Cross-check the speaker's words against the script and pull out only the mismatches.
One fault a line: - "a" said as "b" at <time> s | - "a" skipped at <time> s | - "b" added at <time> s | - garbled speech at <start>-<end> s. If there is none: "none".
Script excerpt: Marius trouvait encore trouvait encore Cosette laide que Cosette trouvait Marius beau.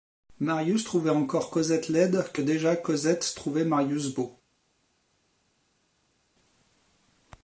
- "trouvait encore" skipped at 1.5 s
- "déjà" added at 2.4 s